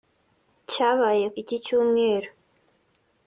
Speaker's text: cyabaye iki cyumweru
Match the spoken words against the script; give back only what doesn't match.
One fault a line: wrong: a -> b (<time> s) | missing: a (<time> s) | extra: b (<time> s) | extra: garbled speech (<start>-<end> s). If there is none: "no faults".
no faults